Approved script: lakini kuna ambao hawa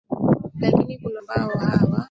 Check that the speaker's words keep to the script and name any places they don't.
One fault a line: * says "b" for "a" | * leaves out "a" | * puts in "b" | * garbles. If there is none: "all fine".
all fine